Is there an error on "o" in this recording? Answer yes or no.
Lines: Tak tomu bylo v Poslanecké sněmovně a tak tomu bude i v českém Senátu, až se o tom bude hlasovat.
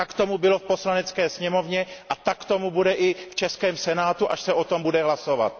no